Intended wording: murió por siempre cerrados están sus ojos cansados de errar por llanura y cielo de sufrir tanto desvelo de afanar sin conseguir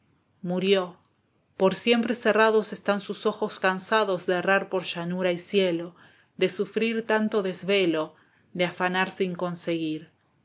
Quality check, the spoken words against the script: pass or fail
pass